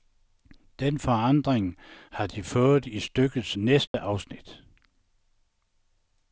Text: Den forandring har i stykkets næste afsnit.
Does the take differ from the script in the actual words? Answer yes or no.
yes